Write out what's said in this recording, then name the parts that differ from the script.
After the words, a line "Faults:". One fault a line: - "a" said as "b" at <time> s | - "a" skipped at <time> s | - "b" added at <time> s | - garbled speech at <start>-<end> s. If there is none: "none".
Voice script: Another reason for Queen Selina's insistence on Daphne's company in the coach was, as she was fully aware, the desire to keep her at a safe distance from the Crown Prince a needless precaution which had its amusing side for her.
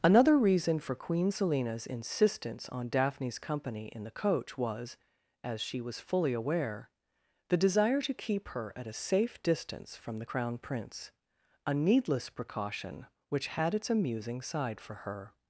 Another reason for Queen Selina's insistence on Daphne's company in the coach was, as she was fully aware, the desire to keep her at a safe distance from the Crown Prince a needless precaution which had its amusing side for her.
Faults:
none